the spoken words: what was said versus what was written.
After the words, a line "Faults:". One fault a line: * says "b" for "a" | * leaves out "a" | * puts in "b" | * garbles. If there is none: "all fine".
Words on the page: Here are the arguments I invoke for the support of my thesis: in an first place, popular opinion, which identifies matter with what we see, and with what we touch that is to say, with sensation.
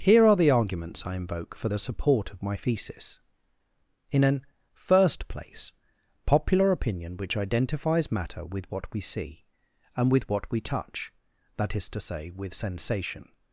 Here are the arguments I invoke for the support of my thesis: in an first place, popular opinion, which identifies matter with what we see, and with what we touch that is to say, with sensation.
Faults:
all fine